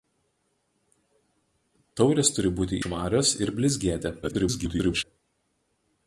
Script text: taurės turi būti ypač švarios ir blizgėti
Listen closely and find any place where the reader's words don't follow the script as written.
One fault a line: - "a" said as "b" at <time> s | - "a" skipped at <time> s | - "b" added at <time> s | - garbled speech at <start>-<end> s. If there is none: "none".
- "ypač" skipped at 2.8 s
- garbled speech at 4.2-5.0 s